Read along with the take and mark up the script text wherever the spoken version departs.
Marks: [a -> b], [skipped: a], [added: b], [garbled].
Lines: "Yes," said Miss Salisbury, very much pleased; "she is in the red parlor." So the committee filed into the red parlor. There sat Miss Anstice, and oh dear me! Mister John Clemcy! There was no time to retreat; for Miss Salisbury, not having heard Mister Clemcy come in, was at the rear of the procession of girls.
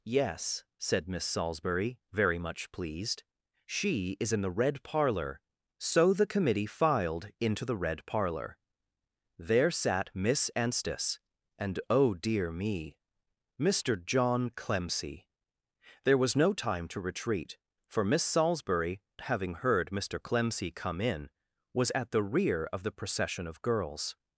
"Yes," said Miss Salisbury, very much pleased; "she is in the red parlor." So the committee filed into the red parlor. There sat Miss Anstice, and oh dear me! Mister John Clemcy! There was no time to retreat; for Miss Salisbury, [skipped: not] having heard Mister Clemcy come in, was at the rear of the procession of girls.